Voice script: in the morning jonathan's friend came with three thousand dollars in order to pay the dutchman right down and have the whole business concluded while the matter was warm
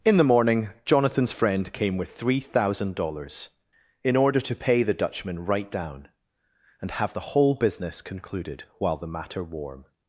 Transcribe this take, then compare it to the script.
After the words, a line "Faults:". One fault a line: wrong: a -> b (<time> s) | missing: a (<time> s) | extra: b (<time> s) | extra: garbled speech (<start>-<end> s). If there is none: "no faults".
in the morning jonathan's friend came with three thousand dollars in order to pay the dutchman right down and have the whole business concluded while the matter warm
Faults:
missing: was (9.4 s)